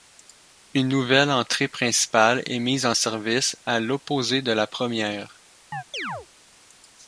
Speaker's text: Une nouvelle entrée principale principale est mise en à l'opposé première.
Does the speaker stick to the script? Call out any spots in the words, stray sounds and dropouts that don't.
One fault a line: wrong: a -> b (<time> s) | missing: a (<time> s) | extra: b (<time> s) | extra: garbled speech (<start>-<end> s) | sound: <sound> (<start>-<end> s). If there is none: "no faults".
missing: principale (2.4 s)
extra: service (2.9 s)
extra: de la (4.4 s)
sound: chirp (5.7-6.3 s)